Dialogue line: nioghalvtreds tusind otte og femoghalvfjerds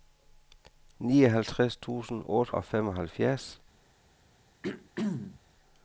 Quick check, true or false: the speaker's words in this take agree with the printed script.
true